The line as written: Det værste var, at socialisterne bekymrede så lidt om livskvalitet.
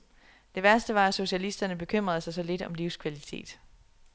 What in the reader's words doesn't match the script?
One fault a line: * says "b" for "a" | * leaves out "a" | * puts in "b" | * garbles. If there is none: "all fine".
* puts in "sig"